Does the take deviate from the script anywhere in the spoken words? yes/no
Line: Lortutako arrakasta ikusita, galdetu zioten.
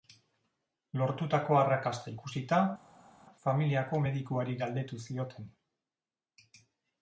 yes